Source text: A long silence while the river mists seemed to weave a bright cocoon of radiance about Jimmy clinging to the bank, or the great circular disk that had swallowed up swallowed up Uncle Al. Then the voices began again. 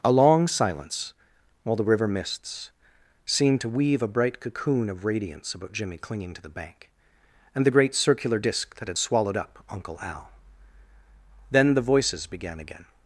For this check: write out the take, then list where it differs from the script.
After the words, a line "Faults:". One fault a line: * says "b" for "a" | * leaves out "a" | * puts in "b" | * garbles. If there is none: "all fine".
A long silence while the river mists seemed to weave a bright cocoon of radiance about Jimmy clinging to the bank, and the great circular disk that had swallowed up Uncle Al. Then the voices began again.
Faults:
* says "and" for "or"
* leaves out "swallowed up"